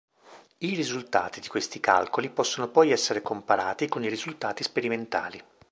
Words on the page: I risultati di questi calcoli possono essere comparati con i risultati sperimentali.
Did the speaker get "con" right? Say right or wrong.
right